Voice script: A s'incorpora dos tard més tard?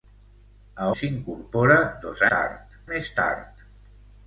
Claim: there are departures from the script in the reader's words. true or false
false